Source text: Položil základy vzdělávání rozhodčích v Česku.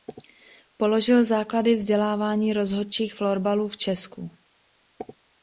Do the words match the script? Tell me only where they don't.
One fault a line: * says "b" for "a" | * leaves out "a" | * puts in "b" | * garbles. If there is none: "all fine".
* puts in "florbalu"